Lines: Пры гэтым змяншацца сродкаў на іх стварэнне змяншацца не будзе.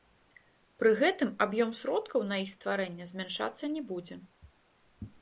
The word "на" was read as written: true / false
true